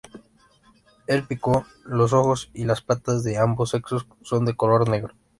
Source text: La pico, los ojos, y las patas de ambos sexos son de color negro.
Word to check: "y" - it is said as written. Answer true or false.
true